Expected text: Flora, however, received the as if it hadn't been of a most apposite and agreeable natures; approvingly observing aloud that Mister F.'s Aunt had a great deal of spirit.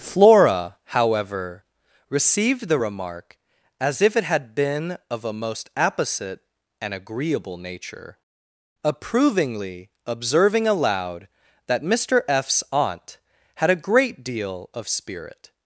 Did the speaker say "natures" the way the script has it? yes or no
no